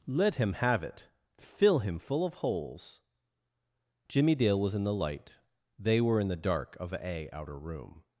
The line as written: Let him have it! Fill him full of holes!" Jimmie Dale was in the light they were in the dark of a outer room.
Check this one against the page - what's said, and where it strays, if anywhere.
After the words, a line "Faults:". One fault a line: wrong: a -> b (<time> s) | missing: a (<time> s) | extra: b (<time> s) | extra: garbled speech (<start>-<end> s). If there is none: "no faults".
Let him have it! Fill him full of holes!" Jimmie Dale was in the light they were in the dark of a outer room.
Faults:
no faults